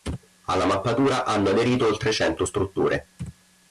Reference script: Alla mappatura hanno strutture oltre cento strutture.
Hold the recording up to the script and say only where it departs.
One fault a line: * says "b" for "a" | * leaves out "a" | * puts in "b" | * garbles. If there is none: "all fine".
* says "aderito" for "strutture"